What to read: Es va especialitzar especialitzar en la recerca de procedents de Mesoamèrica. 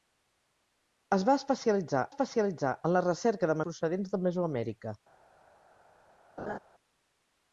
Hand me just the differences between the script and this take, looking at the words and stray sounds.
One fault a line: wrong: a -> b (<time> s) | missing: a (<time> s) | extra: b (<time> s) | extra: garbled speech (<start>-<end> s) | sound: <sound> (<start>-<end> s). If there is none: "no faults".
sound: laugh (6.4-6.6 s)